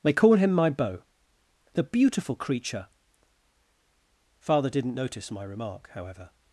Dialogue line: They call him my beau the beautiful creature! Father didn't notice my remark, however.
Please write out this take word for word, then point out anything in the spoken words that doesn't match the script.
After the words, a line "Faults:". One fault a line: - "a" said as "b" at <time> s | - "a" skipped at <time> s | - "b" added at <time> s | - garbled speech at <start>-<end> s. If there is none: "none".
They call him my beau the beautiful creature! Father didn't notice my remark, however.
Faults:
none